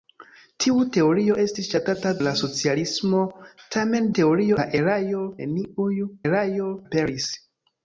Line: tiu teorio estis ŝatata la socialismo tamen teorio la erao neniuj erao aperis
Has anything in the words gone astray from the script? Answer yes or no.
no